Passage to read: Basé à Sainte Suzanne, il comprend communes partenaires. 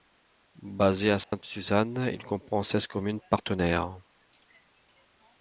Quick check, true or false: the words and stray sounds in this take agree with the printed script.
false